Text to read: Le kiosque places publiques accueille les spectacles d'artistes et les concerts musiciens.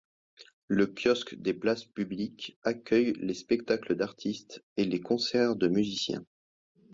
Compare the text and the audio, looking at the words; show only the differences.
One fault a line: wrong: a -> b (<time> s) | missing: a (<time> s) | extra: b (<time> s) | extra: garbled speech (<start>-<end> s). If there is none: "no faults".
extra: des (1.4 s)
extra: de (5.5 s)